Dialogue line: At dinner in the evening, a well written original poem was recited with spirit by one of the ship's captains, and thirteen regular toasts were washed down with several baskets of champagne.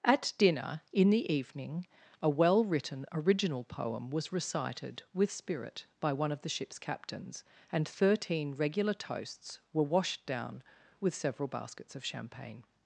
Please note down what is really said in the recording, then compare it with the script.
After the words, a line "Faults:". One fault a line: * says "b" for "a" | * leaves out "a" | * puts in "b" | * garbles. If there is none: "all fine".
At dinner in the evening, a well written original poem was recited with spirit by one of the ship's captains, and thirteen regular toasts were washed down with several baskets of champagne.
Faults:
all fine